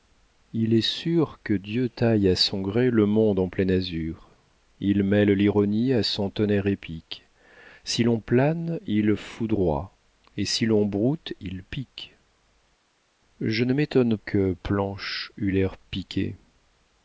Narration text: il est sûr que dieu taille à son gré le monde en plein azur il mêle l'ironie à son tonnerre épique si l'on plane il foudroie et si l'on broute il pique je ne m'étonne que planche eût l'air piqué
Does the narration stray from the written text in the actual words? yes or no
no